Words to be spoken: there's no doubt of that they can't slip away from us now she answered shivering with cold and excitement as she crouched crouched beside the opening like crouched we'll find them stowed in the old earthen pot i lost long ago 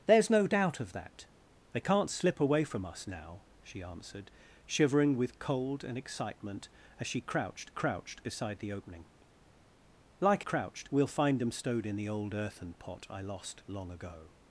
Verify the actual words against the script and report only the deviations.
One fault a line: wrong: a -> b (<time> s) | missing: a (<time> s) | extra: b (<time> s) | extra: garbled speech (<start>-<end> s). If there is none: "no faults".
no faults